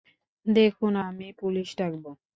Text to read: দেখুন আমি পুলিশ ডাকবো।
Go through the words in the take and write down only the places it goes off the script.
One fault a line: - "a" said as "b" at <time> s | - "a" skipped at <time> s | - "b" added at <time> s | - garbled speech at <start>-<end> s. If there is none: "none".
none